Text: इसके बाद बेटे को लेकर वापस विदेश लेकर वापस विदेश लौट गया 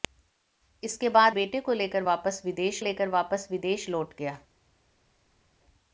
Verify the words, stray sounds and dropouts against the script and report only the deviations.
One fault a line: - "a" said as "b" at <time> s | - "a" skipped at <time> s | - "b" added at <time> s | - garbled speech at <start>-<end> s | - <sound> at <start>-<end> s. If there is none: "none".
none